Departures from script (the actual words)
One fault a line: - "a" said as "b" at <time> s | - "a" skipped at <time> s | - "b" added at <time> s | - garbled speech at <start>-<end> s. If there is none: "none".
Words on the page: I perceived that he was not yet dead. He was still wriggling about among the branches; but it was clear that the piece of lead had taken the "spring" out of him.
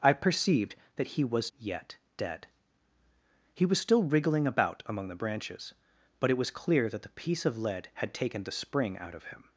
- "not" skipped at 1.5 s